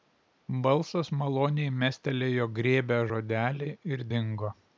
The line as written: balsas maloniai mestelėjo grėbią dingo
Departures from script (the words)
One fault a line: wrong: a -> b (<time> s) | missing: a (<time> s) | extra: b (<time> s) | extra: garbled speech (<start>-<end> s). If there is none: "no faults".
extra: žodelį ir (3.1 s)